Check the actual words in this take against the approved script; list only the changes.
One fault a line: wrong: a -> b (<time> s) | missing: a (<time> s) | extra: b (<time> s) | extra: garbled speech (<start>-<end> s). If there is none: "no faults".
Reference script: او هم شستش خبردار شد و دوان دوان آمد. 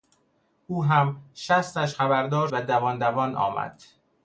missing: شد (2.5 s)